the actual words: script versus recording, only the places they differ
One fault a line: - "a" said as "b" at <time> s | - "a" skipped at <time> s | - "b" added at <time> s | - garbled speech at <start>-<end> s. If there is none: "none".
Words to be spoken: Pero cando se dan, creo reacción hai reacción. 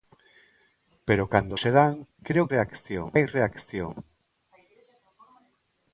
none